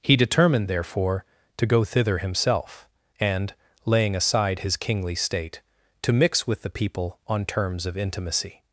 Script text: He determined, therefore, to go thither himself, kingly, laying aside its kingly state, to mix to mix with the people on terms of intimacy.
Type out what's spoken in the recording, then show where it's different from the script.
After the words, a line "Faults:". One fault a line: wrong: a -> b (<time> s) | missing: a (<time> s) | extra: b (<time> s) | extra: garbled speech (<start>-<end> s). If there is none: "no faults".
He determined, therefore, to go thither himself, and, laying aside his kingly state, to mix with the people on terms of intimacy.
Faults:
wrong: kingly -> and (3.2 s)
wrong: its -> his (4.6 s)
missing: to mix (6.5 s)